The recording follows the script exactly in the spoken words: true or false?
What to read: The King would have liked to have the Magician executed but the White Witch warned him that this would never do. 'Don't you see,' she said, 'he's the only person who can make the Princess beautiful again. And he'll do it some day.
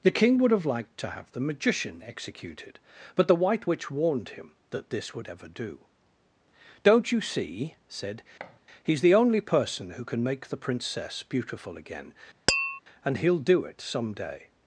false